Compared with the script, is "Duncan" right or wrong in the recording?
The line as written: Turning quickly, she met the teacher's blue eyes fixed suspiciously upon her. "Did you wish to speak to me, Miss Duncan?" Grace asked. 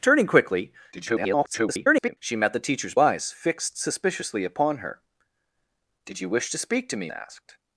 wrong